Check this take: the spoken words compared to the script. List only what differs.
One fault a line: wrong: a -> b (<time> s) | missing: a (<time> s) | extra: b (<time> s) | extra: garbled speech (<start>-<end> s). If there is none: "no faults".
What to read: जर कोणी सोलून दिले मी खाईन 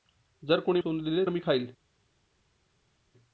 no faults